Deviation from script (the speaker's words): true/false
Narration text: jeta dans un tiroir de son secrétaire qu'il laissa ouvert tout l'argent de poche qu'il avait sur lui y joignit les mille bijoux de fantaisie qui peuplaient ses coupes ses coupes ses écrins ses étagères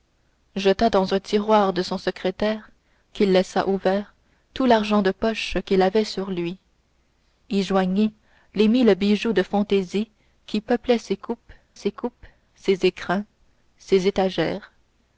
false